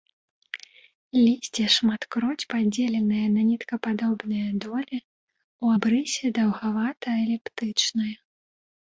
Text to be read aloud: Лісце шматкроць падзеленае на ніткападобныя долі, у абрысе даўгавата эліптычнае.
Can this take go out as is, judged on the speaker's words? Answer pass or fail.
pass